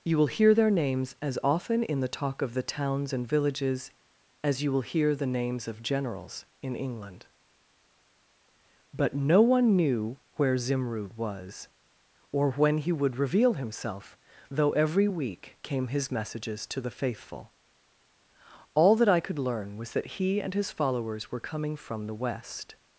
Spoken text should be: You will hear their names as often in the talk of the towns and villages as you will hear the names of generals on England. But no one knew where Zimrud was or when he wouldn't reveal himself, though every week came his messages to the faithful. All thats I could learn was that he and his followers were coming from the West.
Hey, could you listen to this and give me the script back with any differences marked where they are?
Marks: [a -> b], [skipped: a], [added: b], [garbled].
You will hear their names as often in the talk of the towns and villages as you will hear the names of generals [on -> in] England. But no one knew where Zimrud was or when he [wouldn't -> would] reveal himself, though every week came his messages to the faithful. All [thats -> that] I could learn was that he and his followers were coming from the West.